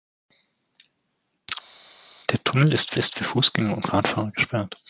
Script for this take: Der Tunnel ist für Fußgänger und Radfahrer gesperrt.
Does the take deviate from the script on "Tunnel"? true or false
false